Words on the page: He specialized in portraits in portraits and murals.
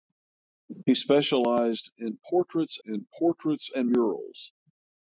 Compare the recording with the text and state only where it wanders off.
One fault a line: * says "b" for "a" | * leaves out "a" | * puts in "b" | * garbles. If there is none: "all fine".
all fine